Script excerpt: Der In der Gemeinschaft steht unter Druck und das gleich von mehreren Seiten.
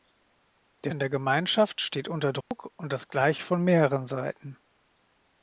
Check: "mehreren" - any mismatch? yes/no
no